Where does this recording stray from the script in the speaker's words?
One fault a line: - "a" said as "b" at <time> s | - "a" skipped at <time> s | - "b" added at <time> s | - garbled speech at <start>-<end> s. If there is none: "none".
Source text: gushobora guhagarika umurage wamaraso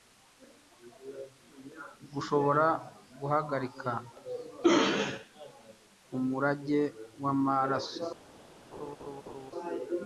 none